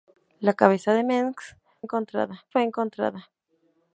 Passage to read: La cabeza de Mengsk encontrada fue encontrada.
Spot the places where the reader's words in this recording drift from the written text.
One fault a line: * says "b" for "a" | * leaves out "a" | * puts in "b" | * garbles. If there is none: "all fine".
all fine